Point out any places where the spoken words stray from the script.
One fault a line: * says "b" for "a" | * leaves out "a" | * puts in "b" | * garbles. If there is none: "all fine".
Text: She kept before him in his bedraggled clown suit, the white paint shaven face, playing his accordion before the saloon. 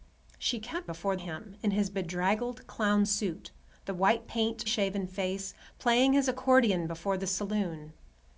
all fine